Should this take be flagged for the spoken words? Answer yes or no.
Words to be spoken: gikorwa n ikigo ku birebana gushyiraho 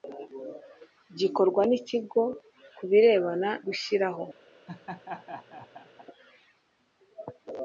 no